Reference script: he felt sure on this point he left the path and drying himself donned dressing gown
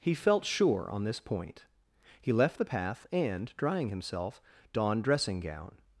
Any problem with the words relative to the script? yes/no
no